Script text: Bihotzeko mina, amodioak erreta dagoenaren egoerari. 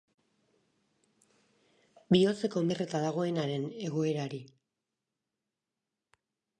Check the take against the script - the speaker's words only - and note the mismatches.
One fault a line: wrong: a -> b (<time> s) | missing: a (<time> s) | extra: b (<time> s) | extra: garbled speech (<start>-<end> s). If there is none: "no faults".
missing: mina amodioak (2.6 s)